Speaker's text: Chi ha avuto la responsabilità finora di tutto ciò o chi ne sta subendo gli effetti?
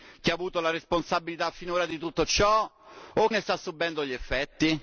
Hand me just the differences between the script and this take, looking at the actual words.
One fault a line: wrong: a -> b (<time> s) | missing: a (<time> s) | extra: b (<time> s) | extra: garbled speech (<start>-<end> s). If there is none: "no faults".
missing: chi (3.3 s)